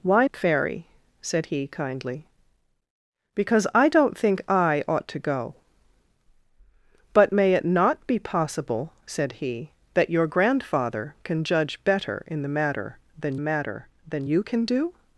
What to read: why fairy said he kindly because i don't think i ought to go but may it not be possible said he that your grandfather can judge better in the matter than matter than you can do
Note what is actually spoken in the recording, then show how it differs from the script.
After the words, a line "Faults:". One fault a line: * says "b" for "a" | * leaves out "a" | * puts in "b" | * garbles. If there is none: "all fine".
why fairy said he kindly because i don't think i ought to go but may it not be possible said he that your grandfather can judge better in the matter than matter than you can do
Faults:
all fine